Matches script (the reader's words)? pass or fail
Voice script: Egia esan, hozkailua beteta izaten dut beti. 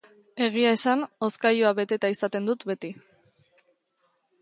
pass